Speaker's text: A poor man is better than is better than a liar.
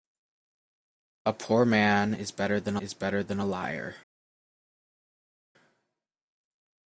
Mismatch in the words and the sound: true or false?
false